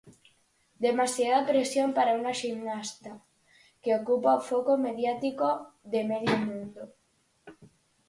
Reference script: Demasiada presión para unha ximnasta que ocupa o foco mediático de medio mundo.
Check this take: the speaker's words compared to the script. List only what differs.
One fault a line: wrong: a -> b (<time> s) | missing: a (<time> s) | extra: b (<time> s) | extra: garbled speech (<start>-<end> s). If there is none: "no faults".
no faults